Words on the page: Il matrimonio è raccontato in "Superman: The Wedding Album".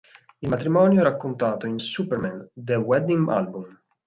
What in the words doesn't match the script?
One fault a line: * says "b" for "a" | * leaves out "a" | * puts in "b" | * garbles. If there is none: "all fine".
all fine